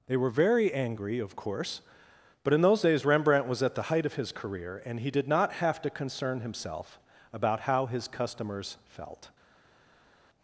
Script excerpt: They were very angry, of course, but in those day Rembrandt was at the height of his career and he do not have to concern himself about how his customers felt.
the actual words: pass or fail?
fail